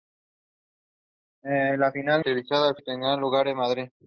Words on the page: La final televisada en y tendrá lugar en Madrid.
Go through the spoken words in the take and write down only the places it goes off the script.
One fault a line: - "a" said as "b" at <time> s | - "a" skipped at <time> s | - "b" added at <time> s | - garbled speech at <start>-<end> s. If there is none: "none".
none